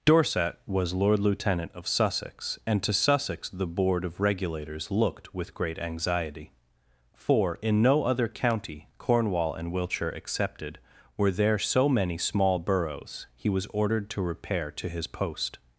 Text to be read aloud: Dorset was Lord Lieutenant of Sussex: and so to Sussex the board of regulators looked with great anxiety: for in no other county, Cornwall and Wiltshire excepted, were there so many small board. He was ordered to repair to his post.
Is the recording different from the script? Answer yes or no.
yes